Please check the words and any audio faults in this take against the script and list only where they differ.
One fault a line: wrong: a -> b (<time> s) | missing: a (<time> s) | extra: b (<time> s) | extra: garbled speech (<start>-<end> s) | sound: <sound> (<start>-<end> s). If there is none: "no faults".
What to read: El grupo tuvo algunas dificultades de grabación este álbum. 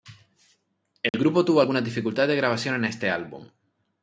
sound: dropout (1.1-1.1 s)
extra: en (2.7 s)